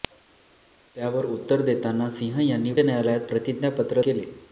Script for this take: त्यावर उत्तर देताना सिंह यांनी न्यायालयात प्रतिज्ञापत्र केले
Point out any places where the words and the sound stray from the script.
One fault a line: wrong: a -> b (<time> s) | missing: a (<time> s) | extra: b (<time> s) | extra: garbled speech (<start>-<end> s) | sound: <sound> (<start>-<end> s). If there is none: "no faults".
no faults